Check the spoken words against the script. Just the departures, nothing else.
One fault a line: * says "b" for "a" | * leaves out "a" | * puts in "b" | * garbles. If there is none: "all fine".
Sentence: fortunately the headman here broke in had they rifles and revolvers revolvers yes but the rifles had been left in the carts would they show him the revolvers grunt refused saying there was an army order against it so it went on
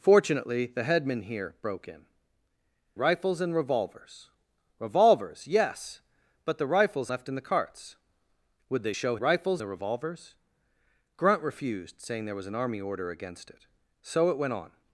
* leaves out "had they"
* leaves out "had been"
* says "rifles" for "him"